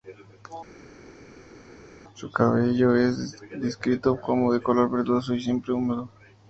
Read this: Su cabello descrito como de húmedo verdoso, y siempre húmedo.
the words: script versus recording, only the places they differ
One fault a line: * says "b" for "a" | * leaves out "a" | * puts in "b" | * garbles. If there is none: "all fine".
* puts in "es"
* says "color" for "húmedo"